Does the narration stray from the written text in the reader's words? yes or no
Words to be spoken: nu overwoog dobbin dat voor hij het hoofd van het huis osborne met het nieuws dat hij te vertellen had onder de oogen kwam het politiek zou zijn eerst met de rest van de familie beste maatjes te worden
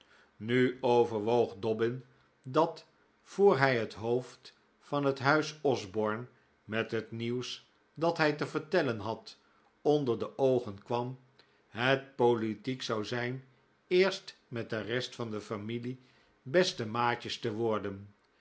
no